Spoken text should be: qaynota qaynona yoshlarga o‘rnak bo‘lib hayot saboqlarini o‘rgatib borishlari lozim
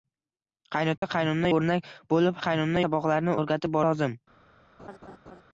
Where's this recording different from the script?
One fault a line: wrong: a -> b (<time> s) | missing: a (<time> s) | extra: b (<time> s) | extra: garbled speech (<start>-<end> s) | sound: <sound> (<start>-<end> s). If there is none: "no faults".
sound: dropout (1.0-1.0 s)
missing: yoshlarga (1.5 s)
wrong: hayot -> qaynona (2.4 s)
missing: borishlari (3.8 s)
sound: laugh (4.8-5.4 s)